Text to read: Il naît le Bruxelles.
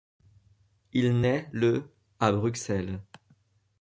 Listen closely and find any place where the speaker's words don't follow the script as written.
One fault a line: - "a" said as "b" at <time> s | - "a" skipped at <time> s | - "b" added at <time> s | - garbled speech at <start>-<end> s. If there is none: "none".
- "à" added at 2.2 s